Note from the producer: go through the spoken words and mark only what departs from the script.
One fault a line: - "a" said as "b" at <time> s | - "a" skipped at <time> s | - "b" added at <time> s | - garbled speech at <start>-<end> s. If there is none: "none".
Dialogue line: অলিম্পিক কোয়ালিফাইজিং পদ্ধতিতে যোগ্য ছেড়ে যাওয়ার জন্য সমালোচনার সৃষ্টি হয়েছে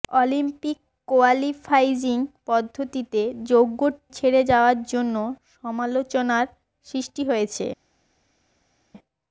none